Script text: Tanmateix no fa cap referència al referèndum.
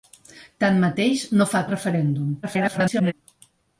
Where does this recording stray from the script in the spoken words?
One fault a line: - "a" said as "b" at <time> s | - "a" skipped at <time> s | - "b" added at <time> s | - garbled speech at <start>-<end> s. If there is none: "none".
- "cap referència" skipped at 1.6 s
- garbled speech at 2.4-3.1 s